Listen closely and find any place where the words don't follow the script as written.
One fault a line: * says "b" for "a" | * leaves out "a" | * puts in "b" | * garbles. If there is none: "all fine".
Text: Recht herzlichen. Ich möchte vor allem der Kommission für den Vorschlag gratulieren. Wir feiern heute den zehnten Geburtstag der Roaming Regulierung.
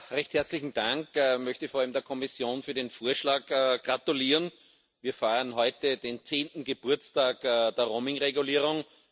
* puts in "Dank"